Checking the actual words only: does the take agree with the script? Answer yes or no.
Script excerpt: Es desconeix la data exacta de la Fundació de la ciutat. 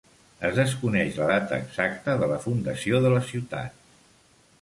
yes